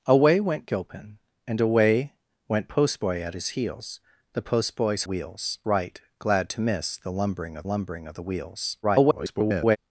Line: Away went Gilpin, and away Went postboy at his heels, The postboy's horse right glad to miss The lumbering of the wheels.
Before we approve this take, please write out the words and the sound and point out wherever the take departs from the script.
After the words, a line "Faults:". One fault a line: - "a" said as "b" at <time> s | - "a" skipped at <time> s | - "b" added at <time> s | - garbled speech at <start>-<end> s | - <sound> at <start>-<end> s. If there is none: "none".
Away went Gilpin, and away Went postboy at his heels, The postboy's wheels right glad to miss The lumbering of lumbering of the wheels. [garbled]
Faults:
- "horse" said as "wheels" at 5.0 s
- "lumbering of" added at 7.6 s
- garbled speech at 8.8-9.8 s